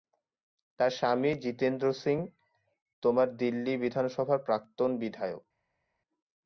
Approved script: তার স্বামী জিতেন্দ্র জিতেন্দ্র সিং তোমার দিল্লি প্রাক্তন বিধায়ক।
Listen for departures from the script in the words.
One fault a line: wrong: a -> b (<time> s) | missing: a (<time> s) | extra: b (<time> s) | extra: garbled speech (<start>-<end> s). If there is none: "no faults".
missing: জিতেন্দ্র (1.9 s)
extra: বিধানসভার (3.8 s)